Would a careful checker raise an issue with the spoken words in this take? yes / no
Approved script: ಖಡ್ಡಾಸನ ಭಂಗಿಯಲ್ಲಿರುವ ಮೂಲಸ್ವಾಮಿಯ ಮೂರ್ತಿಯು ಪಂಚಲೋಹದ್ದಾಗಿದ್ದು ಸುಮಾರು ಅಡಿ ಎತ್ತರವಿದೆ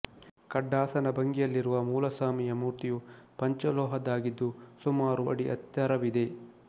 no